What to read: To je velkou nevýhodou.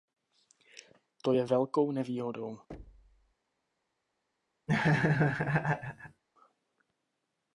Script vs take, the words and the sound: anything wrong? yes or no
yes